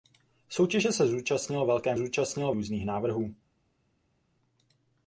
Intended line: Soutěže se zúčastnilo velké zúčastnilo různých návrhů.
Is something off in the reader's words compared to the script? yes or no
no